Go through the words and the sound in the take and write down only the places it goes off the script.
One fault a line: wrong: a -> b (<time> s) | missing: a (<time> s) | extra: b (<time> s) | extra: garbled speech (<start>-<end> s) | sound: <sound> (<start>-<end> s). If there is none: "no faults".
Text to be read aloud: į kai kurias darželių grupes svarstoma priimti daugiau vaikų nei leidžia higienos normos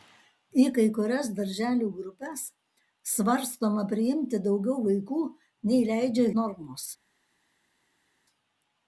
missing: higienos (6.3 s)